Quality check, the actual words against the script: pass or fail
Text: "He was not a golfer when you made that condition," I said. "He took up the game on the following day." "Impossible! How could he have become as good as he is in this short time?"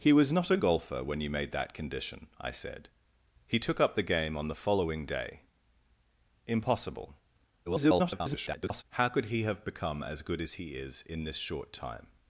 fail